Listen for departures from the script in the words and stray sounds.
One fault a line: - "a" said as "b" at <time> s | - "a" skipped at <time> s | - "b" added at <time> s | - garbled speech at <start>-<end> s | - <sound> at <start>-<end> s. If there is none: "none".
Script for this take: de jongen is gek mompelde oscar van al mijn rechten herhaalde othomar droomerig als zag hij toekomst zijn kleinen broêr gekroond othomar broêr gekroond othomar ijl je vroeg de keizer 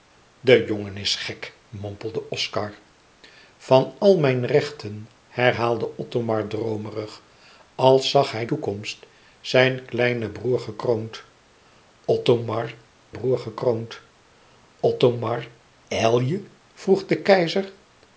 none